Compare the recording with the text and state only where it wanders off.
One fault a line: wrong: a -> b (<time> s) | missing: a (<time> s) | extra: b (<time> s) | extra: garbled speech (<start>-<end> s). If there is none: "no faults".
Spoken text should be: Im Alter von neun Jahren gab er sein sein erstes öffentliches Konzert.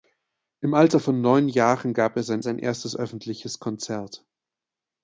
no faults